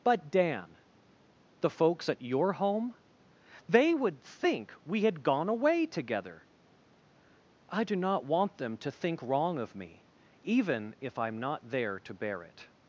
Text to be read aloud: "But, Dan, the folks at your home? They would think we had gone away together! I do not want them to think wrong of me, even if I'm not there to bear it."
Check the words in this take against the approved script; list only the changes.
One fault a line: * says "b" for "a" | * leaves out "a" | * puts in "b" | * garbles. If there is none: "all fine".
all fine